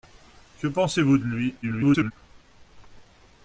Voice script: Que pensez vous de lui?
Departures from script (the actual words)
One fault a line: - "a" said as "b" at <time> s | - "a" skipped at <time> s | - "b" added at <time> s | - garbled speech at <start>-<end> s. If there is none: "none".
- garbled speech at 1.6-2.1 s